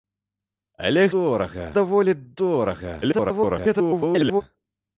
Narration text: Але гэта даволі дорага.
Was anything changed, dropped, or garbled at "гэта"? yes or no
yes